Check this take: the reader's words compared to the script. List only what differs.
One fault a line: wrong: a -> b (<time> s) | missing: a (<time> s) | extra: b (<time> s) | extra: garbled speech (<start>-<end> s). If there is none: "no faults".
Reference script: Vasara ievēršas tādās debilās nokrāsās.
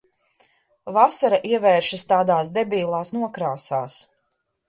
no faults